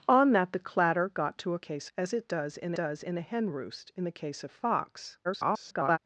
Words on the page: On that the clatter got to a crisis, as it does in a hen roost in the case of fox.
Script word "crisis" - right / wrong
wrong